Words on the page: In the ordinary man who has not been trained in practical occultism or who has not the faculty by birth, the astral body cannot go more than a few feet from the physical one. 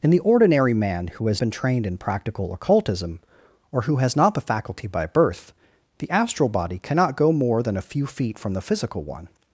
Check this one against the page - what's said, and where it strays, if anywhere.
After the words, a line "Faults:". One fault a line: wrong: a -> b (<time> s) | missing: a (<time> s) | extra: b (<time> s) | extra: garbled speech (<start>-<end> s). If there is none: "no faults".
In the ordinary man who has been trained in practical occultism or who has not the faculty by birth, the astral body cannot go more than a few feet from the physical one.
Faults:
missing: not (1.4 s)